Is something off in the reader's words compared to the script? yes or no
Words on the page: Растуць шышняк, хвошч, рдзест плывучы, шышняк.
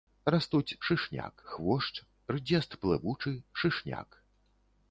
no